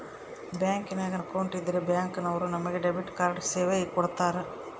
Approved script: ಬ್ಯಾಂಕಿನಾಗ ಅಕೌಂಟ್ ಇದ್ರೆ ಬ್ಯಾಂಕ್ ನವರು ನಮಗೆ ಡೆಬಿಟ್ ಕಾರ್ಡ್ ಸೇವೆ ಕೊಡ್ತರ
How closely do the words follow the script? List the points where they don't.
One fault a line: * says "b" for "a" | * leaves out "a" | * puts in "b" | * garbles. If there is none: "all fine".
all fine